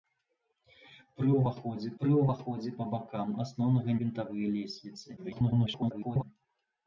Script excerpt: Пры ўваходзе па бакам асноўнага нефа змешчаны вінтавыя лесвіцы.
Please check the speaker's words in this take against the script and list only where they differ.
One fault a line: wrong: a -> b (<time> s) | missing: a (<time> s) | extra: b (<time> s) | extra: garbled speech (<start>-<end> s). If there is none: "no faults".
extra: пры ўваходзе (2.0 s)
missing: нефа змешчаны (3.9 s)
extra: garbled speech (5.2-6.2 s)